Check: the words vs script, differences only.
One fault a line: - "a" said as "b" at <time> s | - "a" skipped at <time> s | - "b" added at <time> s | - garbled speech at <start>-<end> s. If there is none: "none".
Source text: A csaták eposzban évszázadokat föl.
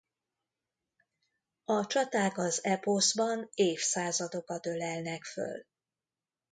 - "az" added at 2.4 s
- "ölelnek" added at 4.7 s